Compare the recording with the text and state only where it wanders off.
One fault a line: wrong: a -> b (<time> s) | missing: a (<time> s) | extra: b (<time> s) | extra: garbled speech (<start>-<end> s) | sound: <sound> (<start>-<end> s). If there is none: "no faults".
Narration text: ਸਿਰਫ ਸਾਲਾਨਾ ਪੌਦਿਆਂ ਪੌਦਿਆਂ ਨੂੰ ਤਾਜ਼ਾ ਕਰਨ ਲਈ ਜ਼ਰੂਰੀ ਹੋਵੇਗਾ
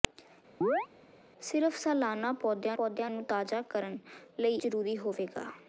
sound: chirp (0.6-0.9 s)